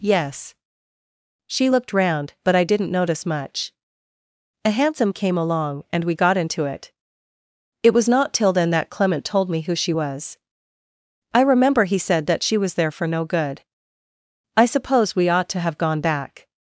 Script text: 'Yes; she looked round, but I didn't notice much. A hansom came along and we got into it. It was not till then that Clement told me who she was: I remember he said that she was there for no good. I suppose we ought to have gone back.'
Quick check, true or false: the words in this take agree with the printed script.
true